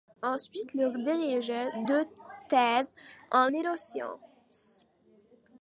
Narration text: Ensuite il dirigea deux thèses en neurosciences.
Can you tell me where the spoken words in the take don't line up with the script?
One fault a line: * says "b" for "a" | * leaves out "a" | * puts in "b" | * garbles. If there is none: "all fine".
all fine